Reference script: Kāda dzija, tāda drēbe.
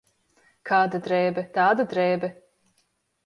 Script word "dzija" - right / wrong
wrong